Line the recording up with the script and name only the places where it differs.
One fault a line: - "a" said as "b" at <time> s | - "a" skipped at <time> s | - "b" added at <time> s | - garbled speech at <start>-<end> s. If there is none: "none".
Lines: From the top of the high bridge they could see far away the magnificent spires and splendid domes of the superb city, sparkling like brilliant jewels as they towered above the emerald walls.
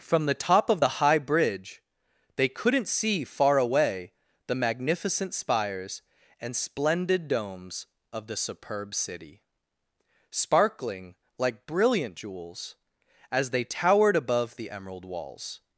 - "could" said as "couldn't" at 2.5 s